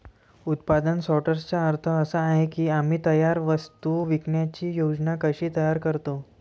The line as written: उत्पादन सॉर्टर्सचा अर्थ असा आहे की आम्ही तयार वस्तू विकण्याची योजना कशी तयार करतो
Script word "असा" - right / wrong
right